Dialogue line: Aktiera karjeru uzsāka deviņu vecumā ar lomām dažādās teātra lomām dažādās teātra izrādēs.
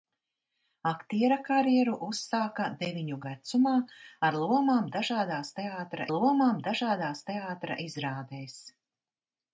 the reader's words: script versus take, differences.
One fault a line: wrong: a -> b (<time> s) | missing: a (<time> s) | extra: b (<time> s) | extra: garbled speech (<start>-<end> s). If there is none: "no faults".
no faults